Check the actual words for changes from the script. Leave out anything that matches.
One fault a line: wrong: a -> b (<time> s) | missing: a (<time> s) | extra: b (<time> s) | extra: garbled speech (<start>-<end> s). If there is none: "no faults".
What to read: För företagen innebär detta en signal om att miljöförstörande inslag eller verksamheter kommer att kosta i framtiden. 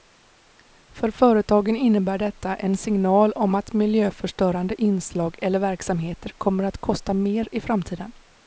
extra: mer (7.1 s)